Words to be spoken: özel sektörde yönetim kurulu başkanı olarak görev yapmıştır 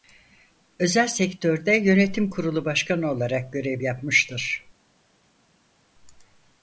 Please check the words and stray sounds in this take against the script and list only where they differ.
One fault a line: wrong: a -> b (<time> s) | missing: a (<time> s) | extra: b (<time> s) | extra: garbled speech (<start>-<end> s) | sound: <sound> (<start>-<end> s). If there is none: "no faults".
no faults